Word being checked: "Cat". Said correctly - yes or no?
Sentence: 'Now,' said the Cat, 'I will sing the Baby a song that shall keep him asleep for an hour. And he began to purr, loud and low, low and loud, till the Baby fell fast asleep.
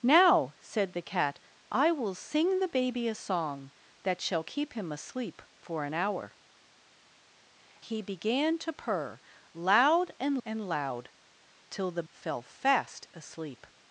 yes